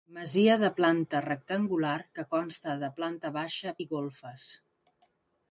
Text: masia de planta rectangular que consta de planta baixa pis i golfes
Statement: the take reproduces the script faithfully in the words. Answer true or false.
false